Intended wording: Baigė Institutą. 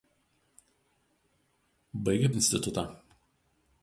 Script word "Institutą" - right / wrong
right